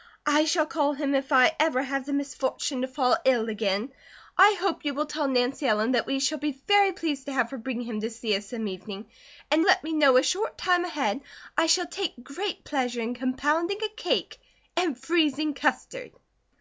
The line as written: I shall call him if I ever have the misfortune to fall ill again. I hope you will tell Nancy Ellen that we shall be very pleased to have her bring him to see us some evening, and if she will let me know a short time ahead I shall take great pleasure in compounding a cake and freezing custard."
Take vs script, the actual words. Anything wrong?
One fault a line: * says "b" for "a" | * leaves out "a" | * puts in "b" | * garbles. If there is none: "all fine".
* leaves out "if she will"